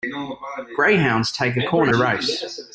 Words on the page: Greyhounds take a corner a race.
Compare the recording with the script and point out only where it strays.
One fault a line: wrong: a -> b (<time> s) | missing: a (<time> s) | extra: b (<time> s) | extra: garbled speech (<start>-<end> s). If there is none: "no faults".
no faults